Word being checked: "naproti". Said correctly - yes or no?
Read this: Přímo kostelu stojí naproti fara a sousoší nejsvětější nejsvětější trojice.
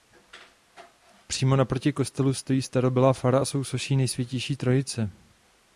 no